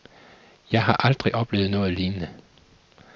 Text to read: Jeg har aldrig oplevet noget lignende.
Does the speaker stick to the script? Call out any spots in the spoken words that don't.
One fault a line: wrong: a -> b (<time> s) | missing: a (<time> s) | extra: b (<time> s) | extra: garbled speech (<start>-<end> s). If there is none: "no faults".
no faults